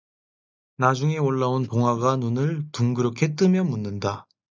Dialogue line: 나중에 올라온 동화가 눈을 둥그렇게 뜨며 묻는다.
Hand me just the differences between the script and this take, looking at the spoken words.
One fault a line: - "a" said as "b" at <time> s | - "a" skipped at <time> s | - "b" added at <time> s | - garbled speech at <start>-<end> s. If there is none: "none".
none